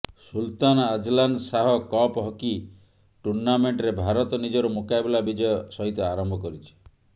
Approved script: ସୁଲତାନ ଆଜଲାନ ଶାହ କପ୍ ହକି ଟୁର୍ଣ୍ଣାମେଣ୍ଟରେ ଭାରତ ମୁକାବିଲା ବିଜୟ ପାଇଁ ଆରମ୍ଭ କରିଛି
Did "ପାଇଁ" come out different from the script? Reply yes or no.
yes